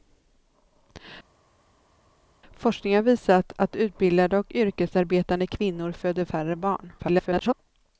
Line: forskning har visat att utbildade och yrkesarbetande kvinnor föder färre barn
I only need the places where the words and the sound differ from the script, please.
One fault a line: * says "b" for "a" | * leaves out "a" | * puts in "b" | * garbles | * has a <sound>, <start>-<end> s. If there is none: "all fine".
* garbles